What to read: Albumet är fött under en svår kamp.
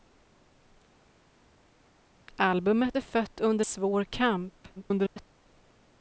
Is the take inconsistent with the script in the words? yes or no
yes